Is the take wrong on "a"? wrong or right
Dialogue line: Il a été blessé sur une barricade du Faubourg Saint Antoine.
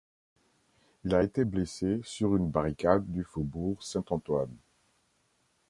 right